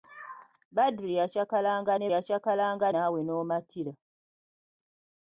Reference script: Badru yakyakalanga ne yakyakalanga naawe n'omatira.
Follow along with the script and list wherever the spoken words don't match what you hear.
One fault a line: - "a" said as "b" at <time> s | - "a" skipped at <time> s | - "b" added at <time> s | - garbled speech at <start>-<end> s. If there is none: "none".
none